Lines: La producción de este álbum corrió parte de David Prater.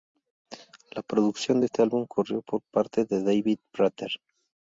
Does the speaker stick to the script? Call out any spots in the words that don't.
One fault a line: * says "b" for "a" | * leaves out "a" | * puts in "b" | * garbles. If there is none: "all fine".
* puts in "por"